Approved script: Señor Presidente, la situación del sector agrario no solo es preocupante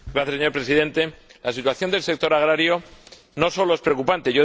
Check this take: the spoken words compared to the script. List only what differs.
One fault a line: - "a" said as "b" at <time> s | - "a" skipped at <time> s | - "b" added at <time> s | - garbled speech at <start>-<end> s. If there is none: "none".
none